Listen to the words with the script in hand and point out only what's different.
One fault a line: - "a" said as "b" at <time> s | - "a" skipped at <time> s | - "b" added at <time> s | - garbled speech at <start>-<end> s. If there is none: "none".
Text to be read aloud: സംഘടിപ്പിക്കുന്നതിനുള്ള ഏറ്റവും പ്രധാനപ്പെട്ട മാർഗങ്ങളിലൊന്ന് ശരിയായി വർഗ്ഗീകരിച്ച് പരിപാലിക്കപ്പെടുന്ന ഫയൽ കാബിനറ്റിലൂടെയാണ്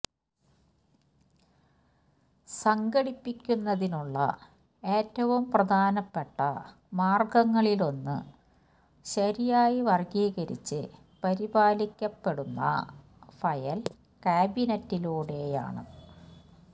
none